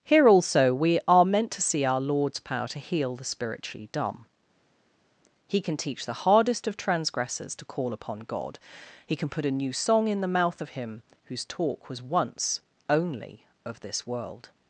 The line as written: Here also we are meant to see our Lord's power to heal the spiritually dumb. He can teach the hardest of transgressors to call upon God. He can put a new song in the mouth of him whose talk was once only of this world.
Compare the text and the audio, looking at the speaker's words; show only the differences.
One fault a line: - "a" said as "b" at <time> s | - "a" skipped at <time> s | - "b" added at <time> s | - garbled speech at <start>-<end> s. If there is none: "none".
none